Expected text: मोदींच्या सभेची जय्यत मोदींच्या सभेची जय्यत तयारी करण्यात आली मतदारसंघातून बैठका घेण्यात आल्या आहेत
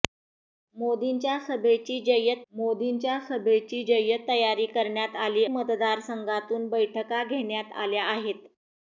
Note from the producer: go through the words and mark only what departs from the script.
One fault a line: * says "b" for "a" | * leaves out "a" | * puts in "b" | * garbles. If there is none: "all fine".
all fine